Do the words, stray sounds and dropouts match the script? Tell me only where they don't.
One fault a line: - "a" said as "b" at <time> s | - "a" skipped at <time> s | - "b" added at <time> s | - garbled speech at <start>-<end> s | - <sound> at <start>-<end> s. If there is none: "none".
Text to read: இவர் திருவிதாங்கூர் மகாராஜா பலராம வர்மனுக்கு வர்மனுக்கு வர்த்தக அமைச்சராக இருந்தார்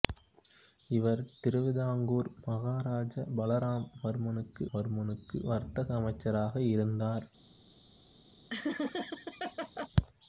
- laugh at 8.5-9.9 s